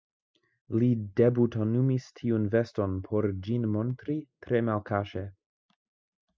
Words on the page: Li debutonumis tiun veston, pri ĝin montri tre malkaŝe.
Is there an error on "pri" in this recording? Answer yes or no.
yes